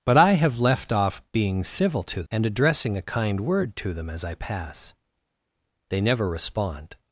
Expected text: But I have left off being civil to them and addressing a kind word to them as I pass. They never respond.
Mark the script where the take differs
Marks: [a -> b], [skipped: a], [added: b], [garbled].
But I have left off being civil to [skipped: them] and addressing a kind word to them as I pass. They never respond.